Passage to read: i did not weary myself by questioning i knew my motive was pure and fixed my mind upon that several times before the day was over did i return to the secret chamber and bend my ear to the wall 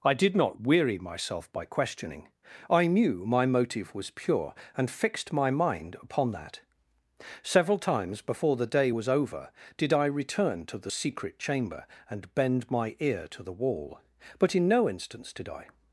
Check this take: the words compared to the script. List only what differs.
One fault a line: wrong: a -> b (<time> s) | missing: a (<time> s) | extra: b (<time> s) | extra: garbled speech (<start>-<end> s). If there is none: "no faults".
extra: but in no instance did i (14.4 s)